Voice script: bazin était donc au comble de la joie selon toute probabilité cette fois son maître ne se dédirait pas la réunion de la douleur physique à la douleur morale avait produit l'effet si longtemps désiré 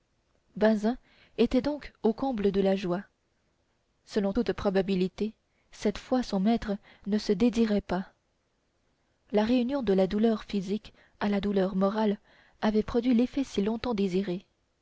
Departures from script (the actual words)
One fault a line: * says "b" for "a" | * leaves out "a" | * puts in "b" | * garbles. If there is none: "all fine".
all fine